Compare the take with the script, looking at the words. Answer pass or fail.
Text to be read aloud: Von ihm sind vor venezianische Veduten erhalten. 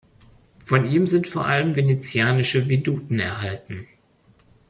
fail